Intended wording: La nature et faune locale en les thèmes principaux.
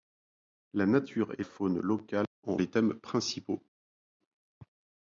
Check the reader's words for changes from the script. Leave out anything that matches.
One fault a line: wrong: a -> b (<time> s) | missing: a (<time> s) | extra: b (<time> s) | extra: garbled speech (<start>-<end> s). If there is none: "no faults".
no faults